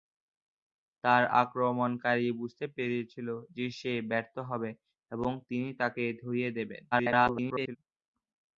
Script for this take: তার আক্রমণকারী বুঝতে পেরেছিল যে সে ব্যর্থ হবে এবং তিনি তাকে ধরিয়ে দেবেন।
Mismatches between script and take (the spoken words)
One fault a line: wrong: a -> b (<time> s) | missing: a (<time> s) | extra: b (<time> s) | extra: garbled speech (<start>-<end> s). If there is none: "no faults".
extra: garbled speech (6.9-7.8 s)